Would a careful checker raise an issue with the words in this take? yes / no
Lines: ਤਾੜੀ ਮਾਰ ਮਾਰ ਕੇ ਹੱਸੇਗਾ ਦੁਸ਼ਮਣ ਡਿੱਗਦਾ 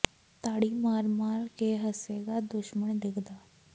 no